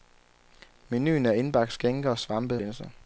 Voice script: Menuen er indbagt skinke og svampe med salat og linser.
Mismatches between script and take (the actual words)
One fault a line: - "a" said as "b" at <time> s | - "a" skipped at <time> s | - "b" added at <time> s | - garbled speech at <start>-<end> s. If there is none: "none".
- "med salat og" skipped at 2.6 s